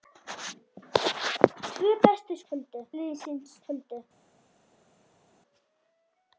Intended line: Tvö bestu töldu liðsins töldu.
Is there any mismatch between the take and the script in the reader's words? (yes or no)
no